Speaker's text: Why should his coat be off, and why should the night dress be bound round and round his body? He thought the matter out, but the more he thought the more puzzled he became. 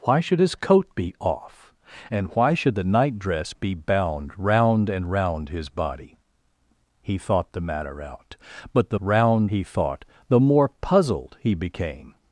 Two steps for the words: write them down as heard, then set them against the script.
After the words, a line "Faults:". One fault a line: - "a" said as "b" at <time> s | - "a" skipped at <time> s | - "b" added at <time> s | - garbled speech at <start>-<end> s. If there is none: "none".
Why should his coat be off, and why should the night dress be bound round and round his body? He thought the matter out, but the round he thought the more puzzled he became.
Faults:
- "more" said as "round" at 9.0 s